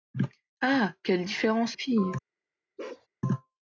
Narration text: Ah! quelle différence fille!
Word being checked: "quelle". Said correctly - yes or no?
yes